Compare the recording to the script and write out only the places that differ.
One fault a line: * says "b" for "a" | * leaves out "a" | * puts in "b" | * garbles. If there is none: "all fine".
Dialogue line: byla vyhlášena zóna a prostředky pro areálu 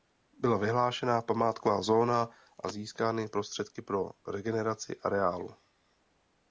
* puts in "památková"
* puts in "získány"
* puts in "regeneraci"